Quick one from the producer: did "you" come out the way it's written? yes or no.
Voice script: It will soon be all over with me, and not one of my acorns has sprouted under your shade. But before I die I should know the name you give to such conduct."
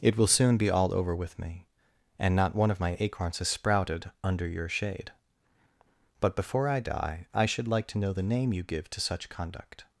yes